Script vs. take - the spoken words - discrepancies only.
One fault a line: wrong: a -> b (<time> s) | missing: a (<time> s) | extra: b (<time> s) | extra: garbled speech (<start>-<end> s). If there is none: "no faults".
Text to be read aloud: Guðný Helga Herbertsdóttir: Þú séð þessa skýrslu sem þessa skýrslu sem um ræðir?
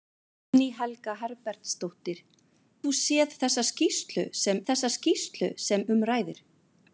no faults